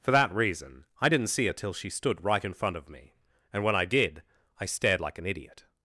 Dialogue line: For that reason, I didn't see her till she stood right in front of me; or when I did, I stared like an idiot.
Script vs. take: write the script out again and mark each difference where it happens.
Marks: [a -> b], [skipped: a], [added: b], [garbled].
For that reason, I didn't see her till she stood right in front of me; [or -> and] when I did, I stared like an idiot.